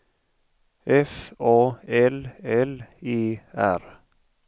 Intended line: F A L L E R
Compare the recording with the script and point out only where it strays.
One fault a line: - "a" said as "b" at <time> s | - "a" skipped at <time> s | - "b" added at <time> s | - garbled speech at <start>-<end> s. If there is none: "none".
none